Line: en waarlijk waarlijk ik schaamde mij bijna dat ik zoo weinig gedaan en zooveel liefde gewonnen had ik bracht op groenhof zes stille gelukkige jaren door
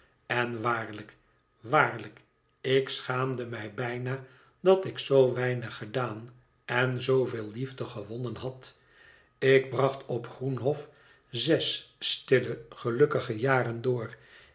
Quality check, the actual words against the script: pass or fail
pass